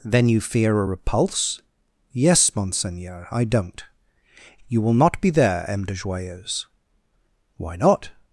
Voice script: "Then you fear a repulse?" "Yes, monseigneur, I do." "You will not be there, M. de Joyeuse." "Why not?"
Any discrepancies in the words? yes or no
yes